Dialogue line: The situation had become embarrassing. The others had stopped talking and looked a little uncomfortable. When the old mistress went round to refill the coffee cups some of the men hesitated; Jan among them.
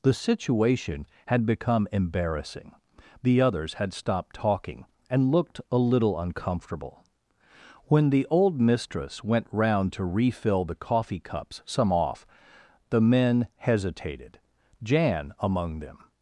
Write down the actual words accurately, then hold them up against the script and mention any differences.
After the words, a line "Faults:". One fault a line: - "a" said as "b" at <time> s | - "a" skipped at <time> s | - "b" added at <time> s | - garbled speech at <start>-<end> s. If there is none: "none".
The situation had become embarrassing. The others had stopped talking and looked a little uncomfortable. When the old mistress went round to refill the coffee cups some off the men hesitated; Jan among them.
Faults:
- "of" said as "off" at 11.9 s